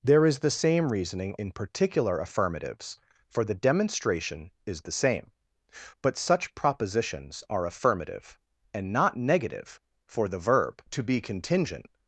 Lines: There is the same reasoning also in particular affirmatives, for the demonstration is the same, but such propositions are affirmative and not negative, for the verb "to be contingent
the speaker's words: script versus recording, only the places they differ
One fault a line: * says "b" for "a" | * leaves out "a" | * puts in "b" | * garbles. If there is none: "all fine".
* leaves out "also"